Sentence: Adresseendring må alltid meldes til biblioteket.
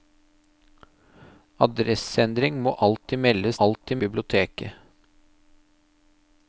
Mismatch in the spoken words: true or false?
true